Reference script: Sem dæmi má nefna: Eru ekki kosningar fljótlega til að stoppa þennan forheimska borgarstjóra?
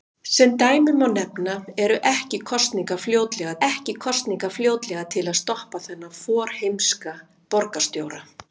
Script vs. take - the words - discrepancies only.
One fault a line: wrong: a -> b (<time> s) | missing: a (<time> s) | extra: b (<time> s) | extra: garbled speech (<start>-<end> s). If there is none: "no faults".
extra: ekki kosningar fljótlega (3.7 s)